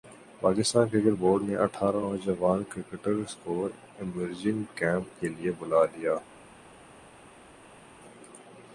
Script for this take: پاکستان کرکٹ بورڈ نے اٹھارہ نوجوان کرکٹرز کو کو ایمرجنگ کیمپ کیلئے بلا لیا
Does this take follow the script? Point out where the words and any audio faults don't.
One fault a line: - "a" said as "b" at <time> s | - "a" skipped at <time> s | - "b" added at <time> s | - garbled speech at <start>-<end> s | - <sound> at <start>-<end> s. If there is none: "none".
- "کو" skipped at 3.6 s